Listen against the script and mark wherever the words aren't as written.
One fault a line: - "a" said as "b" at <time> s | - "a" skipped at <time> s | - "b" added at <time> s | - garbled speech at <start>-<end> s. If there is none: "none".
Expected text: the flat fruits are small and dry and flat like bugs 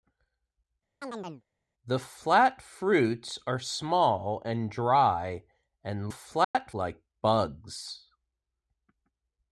none